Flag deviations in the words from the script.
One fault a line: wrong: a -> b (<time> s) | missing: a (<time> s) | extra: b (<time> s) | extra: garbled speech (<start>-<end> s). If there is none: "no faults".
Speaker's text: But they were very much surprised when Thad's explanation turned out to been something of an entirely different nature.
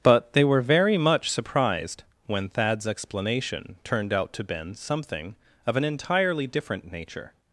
no faults